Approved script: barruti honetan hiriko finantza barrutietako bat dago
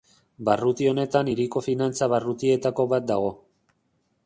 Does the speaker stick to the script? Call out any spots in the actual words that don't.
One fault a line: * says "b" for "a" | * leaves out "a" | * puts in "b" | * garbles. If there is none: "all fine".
all fine